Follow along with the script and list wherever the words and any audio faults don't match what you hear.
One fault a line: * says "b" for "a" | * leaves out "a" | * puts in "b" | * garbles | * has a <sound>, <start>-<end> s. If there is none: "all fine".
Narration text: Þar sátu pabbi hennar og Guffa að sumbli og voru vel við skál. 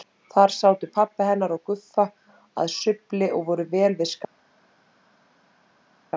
all fine